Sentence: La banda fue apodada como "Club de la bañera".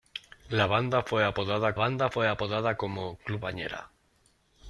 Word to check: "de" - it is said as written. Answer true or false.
false